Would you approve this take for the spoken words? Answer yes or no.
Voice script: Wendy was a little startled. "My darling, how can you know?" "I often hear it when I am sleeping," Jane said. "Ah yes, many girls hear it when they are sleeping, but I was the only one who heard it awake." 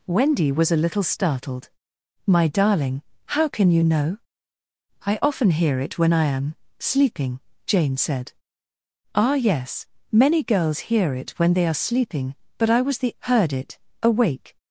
no